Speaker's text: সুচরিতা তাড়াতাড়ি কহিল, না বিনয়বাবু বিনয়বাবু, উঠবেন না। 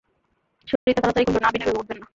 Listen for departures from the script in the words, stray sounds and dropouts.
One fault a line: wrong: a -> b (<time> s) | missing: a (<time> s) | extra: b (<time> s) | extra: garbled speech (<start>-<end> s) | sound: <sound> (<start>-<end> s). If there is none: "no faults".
sound: dropout (0.8-0.9 s)
missing: বিনয়বাবু (1.8 s)